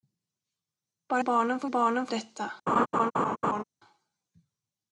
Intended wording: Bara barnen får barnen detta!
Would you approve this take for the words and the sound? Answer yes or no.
no